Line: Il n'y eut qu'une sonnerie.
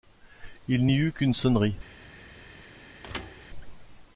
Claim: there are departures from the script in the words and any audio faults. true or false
true